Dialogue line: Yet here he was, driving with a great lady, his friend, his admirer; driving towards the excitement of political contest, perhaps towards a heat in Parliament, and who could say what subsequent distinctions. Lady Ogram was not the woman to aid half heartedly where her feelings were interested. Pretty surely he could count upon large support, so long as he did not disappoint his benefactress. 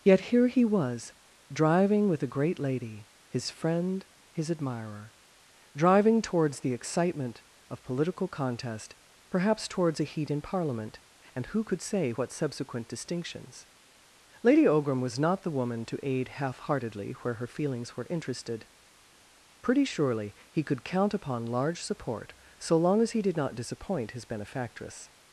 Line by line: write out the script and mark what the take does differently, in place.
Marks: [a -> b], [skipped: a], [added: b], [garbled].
Yet here he was, driving with a great lady, his friend, his admirer; driving towards the excitement of political contest, perhaps towards a heat in Parliament, and who could say what subsequent distinctions. Lady Ogram was not the woman to aid half heartedly where her feelings were interested. Pretty surely he could count upon large support, so long as he did not disappoint his benefactress.